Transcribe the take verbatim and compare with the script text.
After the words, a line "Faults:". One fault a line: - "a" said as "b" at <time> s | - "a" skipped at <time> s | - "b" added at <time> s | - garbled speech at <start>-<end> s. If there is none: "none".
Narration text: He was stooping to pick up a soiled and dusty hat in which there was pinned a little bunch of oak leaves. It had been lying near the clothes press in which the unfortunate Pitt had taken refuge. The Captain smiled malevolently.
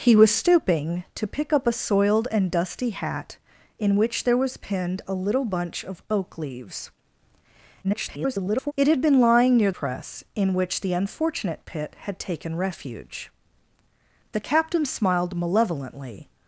He was stooping to pick up a soiled and dusty hat in which there was pinned a little bunch of oak leaves. [garbled] It had been lying near press in which the unfortunate Pitt had taken refuge. The Captain smiled malevolently.
Faults:
- garbled speech at 7.8-8.7 s
- "the clothes" skipped at 9.7 s